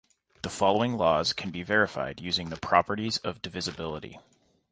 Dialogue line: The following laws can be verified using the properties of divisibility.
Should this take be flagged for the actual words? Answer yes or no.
no